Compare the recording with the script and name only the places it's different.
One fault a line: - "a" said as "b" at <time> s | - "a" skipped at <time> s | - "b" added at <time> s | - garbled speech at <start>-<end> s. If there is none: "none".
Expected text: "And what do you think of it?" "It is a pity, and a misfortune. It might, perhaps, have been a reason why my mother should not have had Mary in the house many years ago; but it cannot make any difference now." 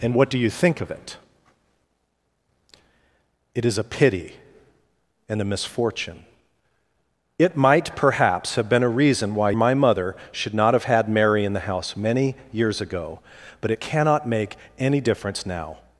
none